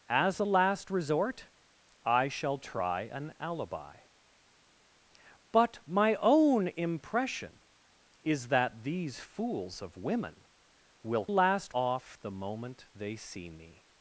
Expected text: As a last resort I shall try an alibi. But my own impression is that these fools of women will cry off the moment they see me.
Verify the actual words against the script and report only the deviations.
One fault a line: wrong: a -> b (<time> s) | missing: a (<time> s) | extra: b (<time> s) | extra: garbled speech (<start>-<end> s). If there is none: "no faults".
wrong: cry -> last (11.3 s)